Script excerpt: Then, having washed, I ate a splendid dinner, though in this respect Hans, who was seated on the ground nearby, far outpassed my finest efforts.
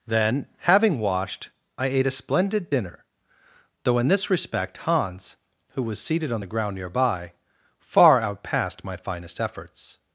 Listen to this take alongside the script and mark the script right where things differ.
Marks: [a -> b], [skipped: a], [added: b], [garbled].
Then, having washed, I ate a splendid dinner, though in this respect Hans, who was seated on the ground nearby, far outpassed my finest efforts.